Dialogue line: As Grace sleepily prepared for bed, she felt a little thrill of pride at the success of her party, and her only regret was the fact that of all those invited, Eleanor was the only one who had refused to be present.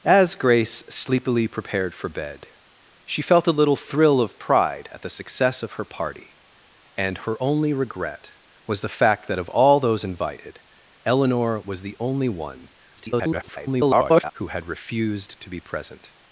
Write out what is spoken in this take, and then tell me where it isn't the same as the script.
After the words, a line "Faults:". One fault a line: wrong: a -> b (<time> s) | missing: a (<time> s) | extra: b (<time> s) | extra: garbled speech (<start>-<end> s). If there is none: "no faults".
As Grace sleepily prepared for bed, she felt a little thrill of pride at the success of her party, and her only regret was the fact that of all those invited, Eleanor was the only one [garbled] who had refused to be present.
Faults:
extra: garbled speech (13.0-14.3 s)